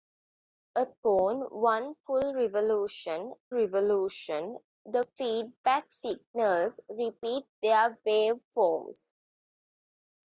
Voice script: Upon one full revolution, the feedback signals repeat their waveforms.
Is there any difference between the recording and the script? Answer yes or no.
yes